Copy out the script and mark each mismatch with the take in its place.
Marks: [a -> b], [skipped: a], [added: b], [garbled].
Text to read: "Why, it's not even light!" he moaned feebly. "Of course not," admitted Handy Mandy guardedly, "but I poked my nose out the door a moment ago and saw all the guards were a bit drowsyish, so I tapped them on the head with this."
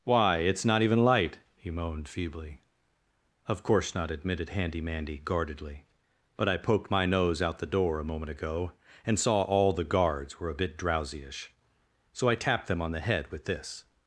"Why, it's not even light!" he moaned feebly. "Of course not," admitted Handy Mandy guardedly, "but I poked my nose out the door a moment ago and saw all the guards were a bit drowsyish, so I tapped them on the head with this."